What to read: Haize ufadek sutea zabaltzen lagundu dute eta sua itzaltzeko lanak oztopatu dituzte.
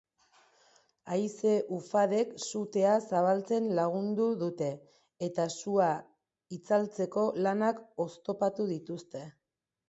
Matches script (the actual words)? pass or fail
pass